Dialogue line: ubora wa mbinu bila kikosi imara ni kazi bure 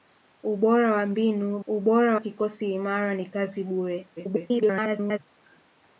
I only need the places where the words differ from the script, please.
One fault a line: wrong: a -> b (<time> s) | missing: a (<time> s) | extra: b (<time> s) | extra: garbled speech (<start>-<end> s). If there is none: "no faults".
wrong: bila -> ubora (1.7 s)
extra: garbled speech (4.2-5.2 s)